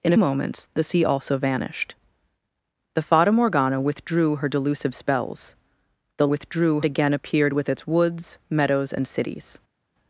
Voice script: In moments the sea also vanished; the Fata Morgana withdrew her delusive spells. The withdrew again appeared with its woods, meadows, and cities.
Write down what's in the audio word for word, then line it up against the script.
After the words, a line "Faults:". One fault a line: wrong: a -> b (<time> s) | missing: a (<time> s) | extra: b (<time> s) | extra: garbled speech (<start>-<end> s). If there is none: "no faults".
In moments the sea also vanished; the Fata Morgana withdrew her delusive spells. The withdrew again appeared with its woods, meadows, and cities.
Faults:
no faults